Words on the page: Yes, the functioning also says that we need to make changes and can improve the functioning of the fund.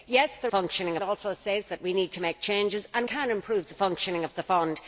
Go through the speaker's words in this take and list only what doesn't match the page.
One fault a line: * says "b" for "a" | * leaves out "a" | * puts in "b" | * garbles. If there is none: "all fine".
all fine